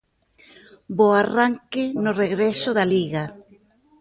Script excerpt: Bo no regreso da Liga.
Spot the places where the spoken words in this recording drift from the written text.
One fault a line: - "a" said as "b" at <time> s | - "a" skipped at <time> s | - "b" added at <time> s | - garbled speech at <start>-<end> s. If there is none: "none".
- "arranque" added at 1.2 s